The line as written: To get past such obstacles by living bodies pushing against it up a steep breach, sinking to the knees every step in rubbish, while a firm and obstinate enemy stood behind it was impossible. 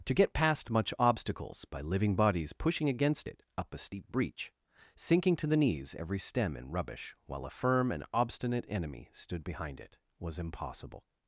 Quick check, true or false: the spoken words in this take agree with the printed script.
false